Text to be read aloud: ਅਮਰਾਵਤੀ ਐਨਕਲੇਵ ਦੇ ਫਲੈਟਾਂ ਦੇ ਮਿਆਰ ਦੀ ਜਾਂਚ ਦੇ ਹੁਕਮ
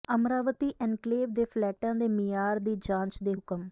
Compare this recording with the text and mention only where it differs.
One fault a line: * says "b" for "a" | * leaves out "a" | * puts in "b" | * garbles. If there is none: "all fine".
all fine